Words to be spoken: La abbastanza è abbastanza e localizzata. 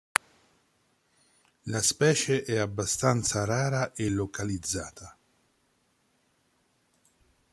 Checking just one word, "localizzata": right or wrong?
right